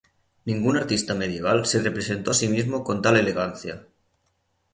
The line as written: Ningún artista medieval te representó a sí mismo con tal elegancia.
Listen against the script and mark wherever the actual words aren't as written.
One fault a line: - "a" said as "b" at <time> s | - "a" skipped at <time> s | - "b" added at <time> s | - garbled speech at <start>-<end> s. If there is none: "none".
- "te" said as "se" at 1.6 s